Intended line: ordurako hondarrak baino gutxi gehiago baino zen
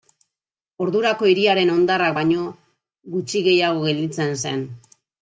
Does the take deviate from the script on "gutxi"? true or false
false